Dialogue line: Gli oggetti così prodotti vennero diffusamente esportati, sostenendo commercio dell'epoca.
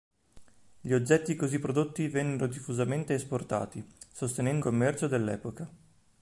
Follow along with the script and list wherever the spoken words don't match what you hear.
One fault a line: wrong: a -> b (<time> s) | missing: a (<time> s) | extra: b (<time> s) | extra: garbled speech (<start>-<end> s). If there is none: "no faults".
no faults